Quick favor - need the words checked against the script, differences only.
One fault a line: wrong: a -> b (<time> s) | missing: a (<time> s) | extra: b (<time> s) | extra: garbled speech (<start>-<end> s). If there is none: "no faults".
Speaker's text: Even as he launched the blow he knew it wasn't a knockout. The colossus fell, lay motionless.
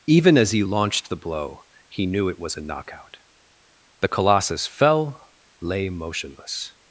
wrong: wasn't -> was (2.4 s)